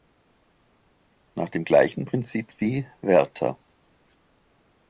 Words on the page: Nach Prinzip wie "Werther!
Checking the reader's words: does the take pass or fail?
fail